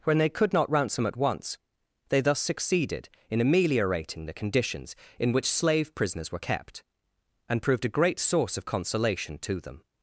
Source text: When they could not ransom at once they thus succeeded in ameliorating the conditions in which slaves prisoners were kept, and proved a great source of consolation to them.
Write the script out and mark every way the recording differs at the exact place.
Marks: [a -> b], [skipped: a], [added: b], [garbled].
When they could not ransom at once they thus succeeded in ameliorating the conditions in which [slaves -> slave] prisoners were kept, and proved a great source of consolation to them.